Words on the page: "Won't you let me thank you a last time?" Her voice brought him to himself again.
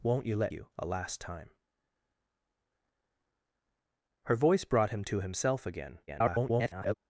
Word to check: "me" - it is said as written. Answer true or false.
false